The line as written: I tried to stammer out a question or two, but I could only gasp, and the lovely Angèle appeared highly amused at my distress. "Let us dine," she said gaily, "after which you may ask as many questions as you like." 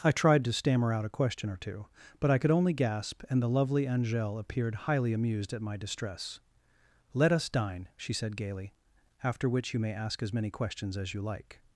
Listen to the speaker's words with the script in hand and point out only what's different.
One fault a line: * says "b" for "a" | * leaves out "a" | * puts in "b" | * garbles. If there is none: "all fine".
all fine